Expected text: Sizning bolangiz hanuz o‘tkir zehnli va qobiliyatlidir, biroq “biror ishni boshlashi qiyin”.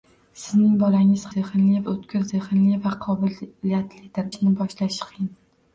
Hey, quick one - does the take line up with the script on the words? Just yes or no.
no